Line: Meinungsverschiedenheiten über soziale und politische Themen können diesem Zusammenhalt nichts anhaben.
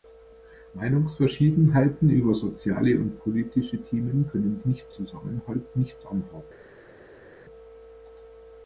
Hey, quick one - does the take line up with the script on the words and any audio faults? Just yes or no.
no